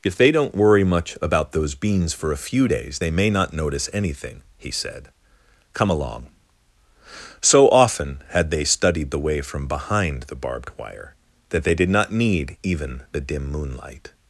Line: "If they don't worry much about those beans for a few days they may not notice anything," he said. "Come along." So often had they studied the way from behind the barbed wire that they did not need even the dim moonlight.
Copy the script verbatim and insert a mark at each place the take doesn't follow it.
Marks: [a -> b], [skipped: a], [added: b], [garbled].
"If they don't worry much about those beans for a few days they may not notice anything," he said. "Come along." So often had they studied the way from behind the barbed wire that they did not need even the dim moonlight.